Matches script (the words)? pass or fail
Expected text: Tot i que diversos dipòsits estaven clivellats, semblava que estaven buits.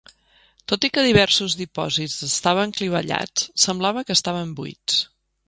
pass